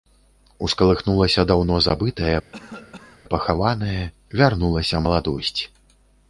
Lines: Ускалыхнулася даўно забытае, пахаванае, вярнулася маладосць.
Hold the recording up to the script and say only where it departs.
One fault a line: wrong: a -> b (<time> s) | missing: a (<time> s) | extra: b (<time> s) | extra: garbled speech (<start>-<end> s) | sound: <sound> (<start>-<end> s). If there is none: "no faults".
sound: cough (2.5-3.2 s)